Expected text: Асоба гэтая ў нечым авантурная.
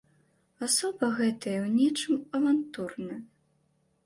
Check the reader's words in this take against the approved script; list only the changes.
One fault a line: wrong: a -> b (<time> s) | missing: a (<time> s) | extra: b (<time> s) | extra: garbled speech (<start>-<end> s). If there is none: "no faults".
no faults